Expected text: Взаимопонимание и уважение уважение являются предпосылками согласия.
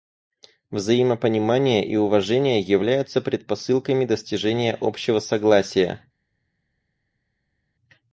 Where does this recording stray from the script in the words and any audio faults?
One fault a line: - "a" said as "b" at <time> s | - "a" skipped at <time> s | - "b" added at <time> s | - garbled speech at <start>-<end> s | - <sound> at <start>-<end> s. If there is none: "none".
- "уважение" skipped at 2.6 s
- "достижения общего" added at 4.0 s